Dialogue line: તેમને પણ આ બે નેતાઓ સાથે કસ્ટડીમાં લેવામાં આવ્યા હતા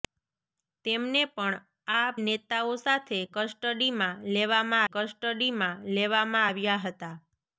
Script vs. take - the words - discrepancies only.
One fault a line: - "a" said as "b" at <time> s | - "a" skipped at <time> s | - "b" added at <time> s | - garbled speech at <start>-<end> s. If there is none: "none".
- "બે" skipped at 2.1 s
- "કસ્ટડીમાં લેવામાં" added at 4.9 s